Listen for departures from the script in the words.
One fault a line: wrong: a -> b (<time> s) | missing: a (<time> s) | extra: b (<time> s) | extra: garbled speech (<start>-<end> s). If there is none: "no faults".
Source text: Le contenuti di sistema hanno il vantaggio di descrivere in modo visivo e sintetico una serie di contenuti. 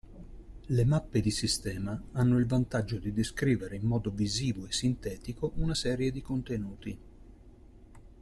wrong: contenuti -> mappe (0.8 s)